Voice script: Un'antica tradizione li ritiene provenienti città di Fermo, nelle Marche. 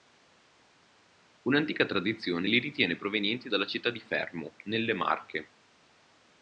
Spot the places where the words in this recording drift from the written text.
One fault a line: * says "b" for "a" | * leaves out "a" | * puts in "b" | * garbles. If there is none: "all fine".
* puts in "dalla"